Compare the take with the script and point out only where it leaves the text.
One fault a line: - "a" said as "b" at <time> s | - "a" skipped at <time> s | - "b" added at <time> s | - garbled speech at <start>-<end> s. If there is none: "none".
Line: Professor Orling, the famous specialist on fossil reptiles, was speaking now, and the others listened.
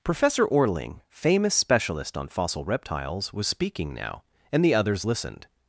- "the" skipped at 1.0 s